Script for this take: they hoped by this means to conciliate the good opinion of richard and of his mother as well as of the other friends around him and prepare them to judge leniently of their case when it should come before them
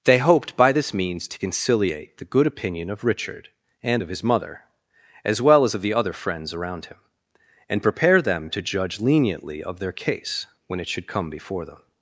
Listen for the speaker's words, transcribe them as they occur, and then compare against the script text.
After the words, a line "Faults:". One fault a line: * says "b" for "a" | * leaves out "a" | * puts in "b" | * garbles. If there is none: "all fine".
they hoped by this means to conciliate the good opinion of richard and of his mother as well as of the other friends around him and prepare them to judge leniently of their case when it should come before them
Faults:
all fine